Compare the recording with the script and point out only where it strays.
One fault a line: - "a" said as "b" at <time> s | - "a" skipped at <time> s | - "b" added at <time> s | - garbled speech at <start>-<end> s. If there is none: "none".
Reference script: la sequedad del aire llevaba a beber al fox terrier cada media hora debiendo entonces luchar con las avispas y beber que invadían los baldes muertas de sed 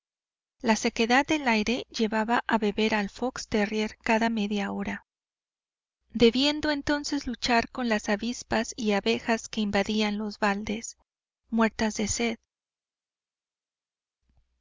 - "beber" said as "abejas" at 8.9 s